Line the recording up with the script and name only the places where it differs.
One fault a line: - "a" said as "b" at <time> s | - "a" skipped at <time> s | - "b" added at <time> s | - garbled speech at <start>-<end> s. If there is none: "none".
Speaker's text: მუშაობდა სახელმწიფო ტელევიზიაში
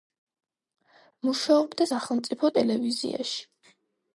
none